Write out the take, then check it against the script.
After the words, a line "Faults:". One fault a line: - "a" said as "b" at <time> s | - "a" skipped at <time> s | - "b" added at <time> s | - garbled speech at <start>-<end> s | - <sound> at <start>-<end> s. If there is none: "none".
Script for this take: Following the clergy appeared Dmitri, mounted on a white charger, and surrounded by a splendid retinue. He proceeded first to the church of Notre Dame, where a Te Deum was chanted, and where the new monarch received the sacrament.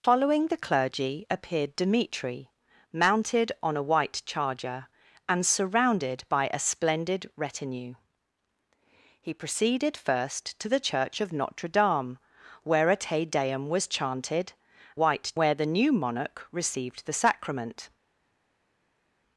Following the clergy appeared Dmitri, mounted on a white charger, and surrounded by a splendid retinue. He proceeded first to the church of Notre Dame, where a Te Deum was chanted, white where the new monarch received the sacrament.
Faults:
- "and" said as "white" at 14.9 s